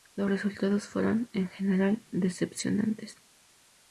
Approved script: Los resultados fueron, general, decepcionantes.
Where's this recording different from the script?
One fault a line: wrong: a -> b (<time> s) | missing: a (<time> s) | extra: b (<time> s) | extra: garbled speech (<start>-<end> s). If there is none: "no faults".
extra: en (1.3 s)